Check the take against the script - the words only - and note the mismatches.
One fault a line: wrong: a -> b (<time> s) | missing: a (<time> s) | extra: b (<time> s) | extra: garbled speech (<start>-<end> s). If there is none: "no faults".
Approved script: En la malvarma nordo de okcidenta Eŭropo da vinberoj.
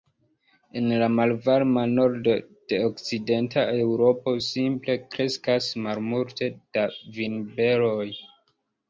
extra: simple kreskas malmulte (4.5 s)